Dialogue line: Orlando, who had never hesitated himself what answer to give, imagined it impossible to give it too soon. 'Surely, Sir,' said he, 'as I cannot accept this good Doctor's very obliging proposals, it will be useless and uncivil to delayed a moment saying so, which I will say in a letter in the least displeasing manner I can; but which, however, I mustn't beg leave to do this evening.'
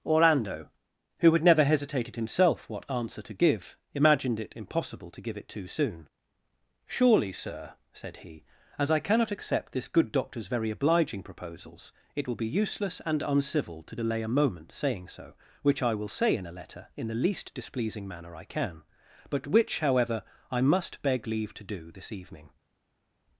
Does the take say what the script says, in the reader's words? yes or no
no